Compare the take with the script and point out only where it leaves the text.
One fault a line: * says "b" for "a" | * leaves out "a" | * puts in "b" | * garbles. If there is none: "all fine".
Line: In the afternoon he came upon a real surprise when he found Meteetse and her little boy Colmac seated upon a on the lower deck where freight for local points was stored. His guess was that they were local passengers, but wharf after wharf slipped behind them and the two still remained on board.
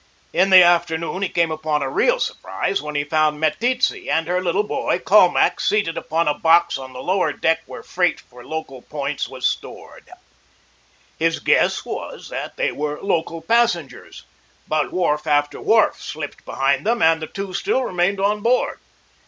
* puts in "box"